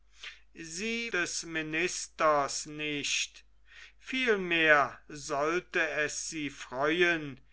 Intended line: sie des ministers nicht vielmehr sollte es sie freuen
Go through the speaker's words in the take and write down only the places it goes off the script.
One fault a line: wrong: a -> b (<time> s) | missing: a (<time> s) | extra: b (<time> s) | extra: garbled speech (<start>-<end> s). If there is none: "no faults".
no faults